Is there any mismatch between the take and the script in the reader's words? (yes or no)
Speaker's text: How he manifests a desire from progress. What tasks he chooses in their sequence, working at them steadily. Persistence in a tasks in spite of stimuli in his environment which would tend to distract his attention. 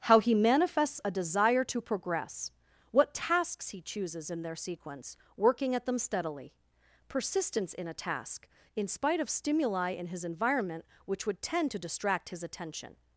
yes